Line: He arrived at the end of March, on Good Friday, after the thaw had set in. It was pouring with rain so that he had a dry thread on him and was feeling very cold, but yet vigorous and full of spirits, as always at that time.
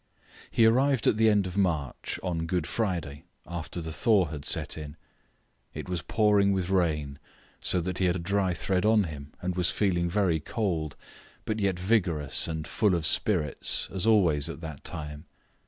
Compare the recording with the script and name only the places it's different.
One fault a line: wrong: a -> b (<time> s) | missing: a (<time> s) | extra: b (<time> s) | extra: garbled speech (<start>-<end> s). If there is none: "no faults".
no faults